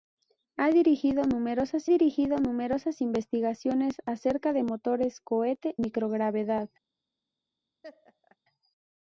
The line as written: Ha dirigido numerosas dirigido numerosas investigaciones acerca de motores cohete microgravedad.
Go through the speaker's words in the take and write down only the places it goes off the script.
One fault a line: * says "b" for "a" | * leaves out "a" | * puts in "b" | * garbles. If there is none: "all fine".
all fine